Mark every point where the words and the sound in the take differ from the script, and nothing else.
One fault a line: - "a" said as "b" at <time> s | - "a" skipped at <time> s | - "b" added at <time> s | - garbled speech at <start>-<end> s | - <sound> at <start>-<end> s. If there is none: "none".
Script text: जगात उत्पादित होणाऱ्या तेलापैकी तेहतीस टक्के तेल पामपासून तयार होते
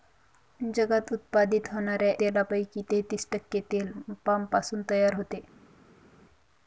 none